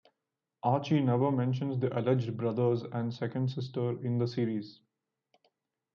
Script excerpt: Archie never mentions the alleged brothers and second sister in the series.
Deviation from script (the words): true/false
false